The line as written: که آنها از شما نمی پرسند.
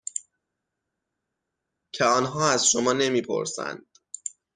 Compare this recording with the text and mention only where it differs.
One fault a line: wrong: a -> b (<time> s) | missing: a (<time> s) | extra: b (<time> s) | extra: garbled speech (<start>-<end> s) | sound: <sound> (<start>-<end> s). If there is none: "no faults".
no faults